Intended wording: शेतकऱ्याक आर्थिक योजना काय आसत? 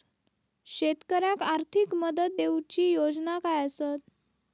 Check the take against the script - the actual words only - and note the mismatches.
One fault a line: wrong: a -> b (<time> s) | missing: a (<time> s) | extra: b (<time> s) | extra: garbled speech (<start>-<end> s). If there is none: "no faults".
extra: मदत देऊची (1.9 s)